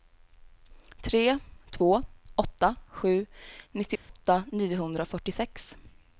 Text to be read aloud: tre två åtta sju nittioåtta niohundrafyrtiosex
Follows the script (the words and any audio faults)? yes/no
no